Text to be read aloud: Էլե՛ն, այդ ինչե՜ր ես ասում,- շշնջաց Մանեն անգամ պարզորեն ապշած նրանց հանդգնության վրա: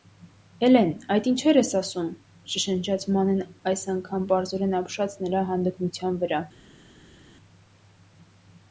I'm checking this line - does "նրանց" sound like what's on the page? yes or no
no